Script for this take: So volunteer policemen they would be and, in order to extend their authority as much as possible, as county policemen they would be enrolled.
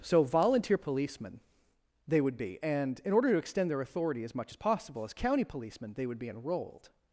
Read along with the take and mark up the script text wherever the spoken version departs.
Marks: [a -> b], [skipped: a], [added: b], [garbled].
So volunteer policemen they would be and, in order to extend their authority as much as possible, as county policemen they would be enrolled.